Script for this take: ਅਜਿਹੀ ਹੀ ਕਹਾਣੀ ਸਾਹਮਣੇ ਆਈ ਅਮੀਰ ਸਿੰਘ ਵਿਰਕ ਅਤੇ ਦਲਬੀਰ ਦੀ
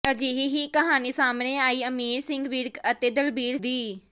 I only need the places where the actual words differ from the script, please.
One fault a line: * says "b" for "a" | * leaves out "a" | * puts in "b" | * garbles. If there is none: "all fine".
all fine